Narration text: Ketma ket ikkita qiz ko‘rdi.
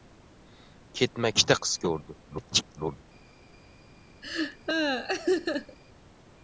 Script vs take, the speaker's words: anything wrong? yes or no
yes